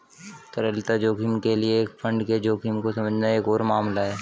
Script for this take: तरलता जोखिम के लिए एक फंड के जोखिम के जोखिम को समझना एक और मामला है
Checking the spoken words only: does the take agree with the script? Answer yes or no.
no